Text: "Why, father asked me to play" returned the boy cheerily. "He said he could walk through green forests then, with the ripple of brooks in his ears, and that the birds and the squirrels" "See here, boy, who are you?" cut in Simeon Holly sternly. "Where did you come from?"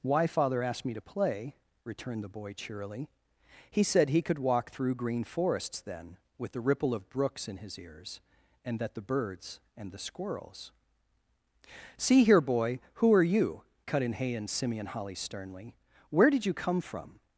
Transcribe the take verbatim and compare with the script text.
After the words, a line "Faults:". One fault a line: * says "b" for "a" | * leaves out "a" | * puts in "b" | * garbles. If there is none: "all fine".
"Why, father asked me to play" returned the boy cheerily. "He said he could walk through green forests then, with the ripple of brooks in his ears, and that the birds and the squirrels" "See here, boy, who are you?" cut in hay and Simeon Holly sternly. "Where did you come from?"
Faults:
* puts in "hay and"